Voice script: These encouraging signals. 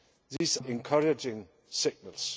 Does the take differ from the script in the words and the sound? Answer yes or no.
yes